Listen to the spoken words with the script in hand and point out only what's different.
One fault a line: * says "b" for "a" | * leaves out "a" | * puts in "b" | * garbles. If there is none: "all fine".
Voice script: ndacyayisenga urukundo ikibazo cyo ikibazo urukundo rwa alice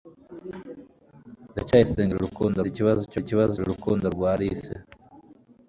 all fine